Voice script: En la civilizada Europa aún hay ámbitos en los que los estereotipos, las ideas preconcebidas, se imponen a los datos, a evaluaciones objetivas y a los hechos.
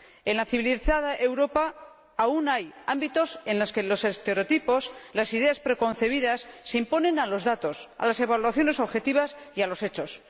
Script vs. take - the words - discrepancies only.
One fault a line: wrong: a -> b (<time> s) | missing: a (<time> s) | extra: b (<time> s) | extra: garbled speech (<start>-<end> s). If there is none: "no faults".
extra: las (8.1 s)